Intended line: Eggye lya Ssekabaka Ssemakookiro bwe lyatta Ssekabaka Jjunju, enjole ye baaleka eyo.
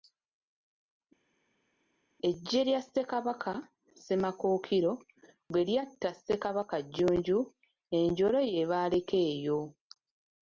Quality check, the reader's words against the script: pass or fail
pass